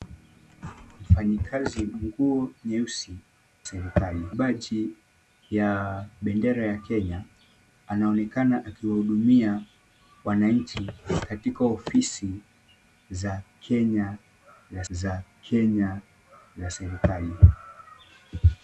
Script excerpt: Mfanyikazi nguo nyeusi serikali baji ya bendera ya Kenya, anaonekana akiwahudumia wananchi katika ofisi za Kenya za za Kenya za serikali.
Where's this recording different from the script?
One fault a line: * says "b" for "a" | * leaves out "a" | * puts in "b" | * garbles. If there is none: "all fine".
all fine